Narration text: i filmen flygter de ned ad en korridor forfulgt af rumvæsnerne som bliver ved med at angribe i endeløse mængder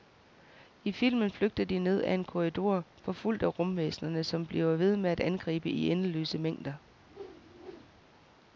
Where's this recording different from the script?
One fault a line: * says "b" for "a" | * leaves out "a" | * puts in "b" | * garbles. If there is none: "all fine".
all fine